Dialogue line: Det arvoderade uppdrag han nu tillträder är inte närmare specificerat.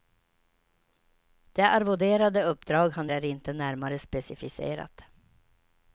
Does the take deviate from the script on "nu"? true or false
true